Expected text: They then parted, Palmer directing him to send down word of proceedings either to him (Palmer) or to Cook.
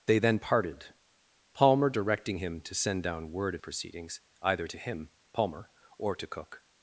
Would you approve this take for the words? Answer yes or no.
yes